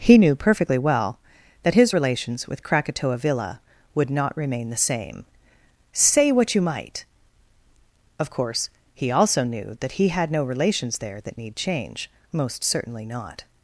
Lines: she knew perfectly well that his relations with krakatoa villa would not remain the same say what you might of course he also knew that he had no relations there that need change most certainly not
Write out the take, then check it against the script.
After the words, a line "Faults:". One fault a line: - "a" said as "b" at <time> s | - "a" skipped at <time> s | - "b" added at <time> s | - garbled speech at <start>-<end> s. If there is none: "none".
he knew perfectly well that his relations with krakatoa villa would not remain the same say what you might of course he also knew that he had no relations there that need change most certainly not
Faults:
- "she" said as "he" at 0.0 s